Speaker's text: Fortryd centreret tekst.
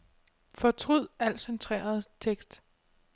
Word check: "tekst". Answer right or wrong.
right